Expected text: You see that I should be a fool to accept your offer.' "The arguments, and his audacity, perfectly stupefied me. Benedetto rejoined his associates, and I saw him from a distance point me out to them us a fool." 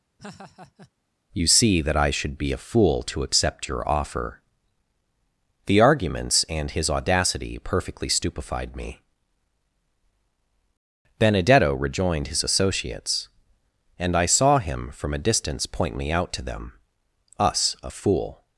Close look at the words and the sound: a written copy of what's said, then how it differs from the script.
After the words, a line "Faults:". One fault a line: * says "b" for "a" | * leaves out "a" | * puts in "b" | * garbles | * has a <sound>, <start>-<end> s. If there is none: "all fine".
You see that I should be a fool to accept your offer.' "The arguments, and his audacity, perfectly stupefied me. Benedetto rejoined his associates, and I saw him from a distance point me out to them us a fool."
Faults:
* has a laugh, 0.2-0.9 s